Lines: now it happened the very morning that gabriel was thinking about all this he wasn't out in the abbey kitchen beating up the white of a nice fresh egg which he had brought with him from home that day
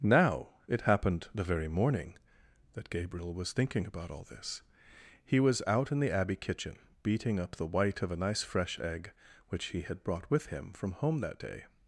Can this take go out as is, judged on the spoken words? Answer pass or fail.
fail